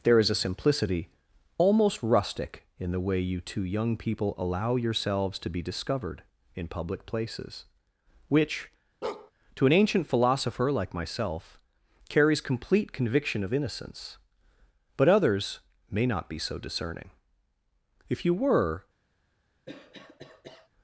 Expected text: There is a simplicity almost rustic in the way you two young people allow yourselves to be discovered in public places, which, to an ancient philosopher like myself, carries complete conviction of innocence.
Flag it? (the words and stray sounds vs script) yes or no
yes